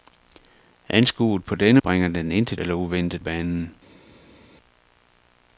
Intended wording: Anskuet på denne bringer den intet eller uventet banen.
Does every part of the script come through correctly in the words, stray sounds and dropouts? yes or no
yes